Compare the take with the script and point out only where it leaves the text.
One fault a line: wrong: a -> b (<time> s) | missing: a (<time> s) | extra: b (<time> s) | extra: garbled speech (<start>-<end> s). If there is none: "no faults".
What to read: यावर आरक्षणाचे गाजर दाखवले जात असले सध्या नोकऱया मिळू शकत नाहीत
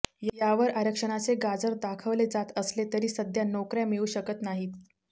extra: तरी (2.9 s)